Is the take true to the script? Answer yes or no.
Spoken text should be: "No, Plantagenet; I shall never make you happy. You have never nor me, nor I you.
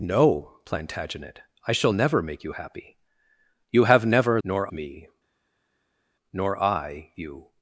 yes